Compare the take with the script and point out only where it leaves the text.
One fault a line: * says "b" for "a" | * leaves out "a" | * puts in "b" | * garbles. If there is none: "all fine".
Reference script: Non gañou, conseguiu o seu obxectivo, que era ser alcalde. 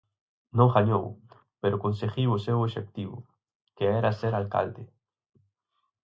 * puts in "pero"